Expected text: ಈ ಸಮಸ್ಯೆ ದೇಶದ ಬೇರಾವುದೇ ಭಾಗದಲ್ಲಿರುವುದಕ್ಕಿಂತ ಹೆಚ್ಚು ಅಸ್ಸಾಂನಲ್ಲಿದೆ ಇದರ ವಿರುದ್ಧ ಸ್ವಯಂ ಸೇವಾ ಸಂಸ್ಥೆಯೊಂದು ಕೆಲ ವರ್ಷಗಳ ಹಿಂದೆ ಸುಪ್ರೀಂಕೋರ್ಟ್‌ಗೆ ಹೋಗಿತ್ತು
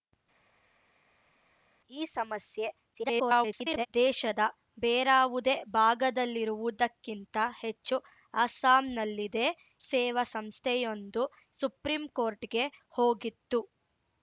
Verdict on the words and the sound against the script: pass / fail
fail